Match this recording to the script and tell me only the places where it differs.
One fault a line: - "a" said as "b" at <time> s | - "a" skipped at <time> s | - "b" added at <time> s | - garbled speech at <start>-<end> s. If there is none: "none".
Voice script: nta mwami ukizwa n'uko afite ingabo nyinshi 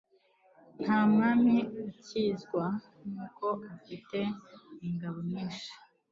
none